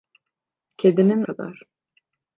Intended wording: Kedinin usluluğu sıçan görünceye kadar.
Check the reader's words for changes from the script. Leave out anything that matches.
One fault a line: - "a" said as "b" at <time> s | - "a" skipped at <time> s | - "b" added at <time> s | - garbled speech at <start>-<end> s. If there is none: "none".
- "usluluğu sıçan görünceye" skipped at 1.2 s